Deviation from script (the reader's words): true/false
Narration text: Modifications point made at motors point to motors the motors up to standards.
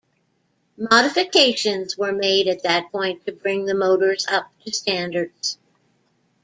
true